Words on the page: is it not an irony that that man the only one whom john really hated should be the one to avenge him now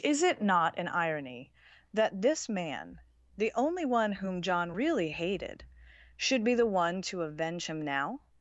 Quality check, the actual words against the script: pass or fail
fail